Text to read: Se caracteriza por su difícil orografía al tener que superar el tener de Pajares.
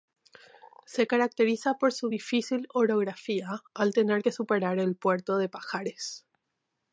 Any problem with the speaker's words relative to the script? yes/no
yes